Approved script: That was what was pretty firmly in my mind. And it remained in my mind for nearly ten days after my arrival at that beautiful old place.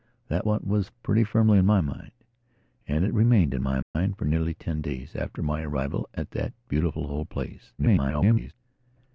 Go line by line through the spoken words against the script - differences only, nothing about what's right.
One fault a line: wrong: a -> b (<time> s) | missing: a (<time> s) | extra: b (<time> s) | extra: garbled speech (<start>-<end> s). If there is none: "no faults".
missing: was (0.5 s)
extra: garbled speech (7.8-8.5 s)